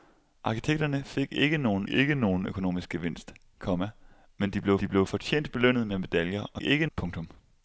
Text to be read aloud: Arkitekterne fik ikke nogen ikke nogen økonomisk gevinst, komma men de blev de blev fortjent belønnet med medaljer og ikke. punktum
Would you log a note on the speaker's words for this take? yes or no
no